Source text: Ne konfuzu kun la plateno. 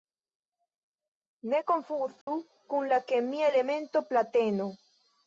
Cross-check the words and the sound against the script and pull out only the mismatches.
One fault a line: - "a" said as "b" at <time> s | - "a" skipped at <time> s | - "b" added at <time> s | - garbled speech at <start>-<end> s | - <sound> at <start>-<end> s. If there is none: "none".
- dropout at 2.2-2.3 s
- "kemia elemento" added at 3.1 s